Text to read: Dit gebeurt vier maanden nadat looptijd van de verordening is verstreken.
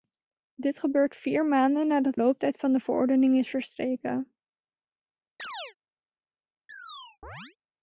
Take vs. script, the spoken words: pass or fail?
pass